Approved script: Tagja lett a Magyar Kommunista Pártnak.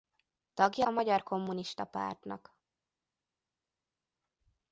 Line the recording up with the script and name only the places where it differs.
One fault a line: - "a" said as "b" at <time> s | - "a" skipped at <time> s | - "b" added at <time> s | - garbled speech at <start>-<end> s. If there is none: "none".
- "lett" skipped at 0.8 s